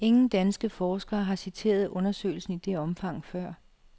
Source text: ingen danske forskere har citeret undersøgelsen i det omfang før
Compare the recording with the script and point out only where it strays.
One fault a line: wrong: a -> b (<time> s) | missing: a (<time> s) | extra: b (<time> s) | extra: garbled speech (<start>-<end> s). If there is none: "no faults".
no faults